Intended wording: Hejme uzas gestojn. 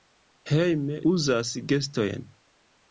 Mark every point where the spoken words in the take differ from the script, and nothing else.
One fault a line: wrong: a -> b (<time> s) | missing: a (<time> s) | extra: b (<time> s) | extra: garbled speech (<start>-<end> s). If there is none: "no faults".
no faults